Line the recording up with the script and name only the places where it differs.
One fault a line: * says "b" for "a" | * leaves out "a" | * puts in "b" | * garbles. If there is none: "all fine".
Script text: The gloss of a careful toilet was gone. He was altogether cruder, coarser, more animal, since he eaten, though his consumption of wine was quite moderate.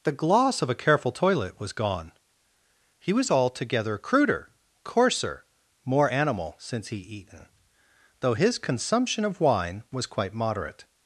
all fine